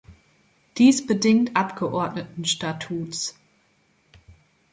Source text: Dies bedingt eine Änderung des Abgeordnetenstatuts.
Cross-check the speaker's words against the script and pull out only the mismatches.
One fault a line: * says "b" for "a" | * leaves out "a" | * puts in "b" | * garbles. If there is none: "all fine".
* leaves out "eine Änderung des"